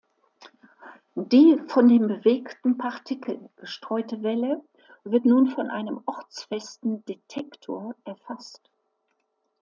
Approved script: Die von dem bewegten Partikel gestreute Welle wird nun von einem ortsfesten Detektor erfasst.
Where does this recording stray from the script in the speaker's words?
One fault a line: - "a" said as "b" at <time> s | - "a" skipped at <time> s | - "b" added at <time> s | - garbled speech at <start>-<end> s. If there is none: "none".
none